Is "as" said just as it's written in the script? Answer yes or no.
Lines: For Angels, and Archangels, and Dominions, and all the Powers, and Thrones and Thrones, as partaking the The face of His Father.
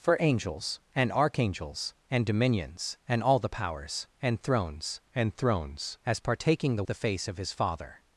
yes